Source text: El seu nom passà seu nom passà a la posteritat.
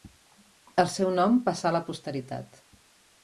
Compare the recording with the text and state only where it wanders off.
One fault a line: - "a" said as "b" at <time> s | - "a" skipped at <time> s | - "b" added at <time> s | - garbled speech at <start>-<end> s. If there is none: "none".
- "seu nom passà" skipped at 1.7 s